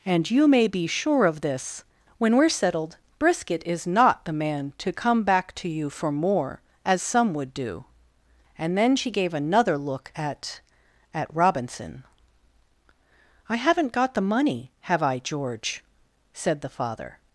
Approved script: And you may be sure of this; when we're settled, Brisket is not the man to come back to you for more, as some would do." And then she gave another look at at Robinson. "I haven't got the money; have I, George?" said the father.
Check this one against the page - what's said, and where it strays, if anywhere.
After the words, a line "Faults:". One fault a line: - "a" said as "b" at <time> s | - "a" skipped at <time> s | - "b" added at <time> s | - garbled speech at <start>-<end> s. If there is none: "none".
And you may be sure of this; when we're settled, Brisket is not the man to come back to you for more, as some would do." And then she gave another look at at Robinson. "I haven't got the money; have I, George?" said the father.
Faults:
none